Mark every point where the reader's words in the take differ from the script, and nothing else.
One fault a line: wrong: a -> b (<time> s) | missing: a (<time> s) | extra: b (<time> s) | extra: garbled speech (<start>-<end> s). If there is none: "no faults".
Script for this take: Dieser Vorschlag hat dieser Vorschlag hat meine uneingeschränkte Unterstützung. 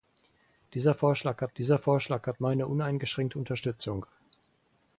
no faults